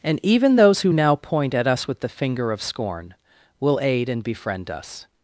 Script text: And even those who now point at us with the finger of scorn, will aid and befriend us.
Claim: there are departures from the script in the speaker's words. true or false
false